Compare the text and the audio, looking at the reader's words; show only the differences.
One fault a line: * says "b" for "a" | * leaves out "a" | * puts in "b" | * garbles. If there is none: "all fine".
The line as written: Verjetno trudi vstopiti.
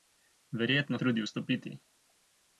all fine